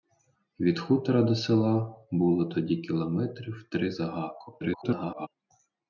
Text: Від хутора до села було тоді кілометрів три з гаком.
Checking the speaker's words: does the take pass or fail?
fail